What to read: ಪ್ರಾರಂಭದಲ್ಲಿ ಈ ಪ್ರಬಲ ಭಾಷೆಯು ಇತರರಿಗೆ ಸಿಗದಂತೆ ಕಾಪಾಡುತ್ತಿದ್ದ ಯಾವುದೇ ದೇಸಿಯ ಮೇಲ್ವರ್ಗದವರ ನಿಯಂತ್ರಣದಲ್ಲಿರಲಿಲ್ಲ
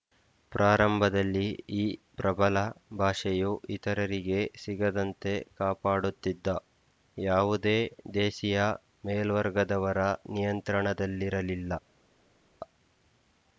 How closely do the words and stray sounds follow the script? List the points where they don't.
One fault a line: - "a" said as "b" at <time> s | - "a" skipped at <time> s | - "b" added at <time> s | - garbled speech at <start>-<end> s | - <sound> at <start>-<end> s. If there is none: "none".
none